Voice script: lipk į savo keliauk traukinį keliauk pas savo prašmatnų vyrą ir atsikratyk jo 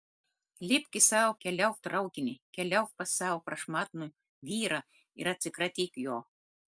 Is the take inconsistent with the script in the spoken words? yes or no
no